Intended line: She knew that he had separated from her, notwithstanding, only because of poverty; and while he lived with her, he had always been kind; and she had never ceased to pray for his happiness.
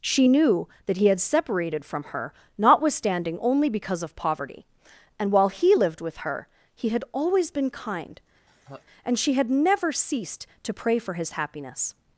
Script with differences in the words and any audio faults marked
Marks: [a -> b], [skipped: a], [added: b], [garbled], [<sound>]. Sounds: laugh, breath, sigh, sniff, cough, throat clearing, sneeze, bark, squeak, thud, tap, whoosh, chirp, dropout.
She knew that he had separated from her, notwithstanding, only because of poverty; and while he lived with her, he had always been kind; [laugh] and she had never ceased to pray for his happiness.